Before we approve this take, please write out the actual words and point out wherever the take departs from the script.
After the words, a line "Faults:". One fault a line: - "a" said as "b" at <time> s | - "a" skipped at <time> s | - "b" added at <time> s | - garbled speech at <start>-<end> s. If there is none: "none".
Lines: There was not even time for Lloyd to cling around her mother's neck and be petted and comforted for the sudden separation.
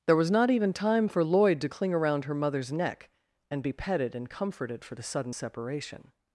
There was not even time for Lloyd to cling around her mother's neck and be petted and comforted for the sudden separation.
Faults:
none